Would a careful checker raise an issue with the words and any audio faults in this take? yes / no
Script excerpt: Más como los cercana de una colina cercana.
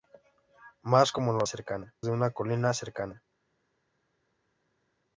no